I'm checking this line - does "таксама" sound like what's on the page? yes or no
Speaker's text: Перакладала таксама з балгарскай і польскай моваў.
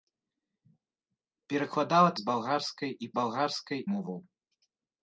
no